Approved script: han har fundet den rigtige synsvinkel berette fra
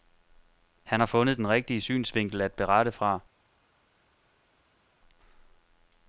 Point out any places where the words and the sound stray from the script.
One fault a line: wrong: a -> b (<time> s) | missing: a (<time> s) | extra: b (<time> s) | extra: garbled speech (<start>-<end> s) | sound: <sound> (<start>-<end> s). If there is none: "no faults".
extra: at (2.4 s)